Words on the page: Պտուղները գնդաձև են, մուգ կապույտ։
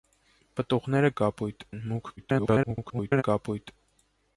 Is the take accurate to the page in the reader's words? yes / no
no